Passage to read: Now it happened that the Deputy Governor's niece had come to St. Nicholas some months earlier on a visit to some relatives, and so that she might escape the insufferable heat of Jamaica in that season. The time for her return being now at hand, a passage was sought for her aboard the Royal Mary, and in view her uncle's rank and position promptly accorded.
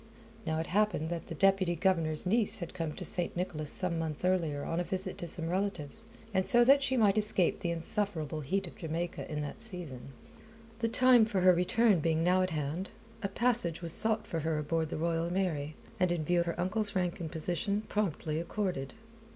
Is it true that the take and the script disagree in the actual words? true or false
false